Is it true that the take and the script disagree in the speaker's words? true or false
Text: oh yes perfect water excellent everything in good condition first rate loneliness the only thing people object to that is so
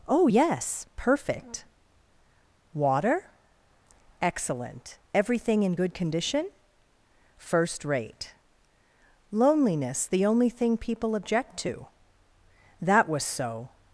true